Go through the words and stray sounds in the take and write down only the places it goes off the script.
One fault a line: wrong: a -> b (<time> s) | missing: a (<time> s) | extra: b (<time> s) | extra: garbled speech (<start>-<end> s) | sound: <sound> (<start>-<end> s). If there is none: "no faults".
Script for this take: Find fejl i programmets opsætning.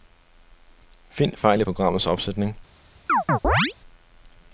sound: chirp (3.1-3.7 s)